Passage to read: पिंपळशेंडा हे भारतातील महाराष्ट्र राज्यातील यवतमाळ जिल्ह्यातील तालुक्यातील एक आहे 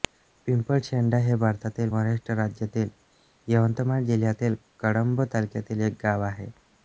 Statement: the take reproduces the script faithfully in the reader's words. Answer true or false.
false